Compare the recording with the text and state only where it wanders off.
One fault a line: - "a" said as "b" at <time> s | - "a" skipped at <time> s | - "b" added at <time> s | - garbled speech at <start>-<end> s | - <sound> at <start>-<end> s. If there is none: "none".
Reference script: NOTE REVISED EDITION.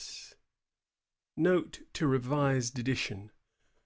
- "TO" added at 1.9 s